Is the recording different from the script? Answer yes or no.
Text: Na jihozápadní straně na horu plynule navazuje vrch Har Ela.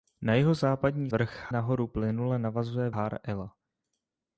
yes